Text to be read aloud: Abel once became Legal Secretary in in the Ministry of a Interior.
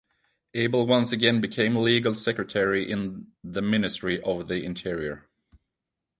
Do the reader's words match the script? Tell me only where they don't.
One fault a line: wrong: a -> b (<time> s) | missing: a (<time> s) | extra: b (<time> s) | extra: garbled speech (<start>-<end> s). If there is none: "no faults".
extra: again (1.1 s)
missing: in (3.3 s)
wrong: a -> the (4.5 s)